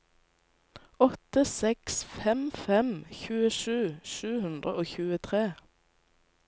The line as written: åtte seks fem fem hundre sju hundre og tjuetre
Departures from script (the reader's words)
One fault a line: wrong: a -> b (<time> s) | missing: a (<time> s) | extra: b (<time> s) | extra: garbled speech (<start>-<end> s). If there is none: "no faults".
wrong: hundre -> tjuesju (3.2 s)